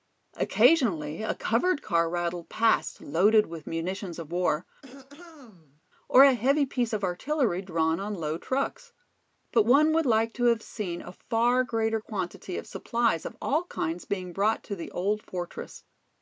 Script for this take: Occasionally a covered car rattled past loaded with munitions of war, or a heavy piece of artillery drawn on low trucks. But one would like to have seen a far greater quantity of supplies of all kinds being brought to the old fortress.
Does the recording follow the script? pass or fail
pass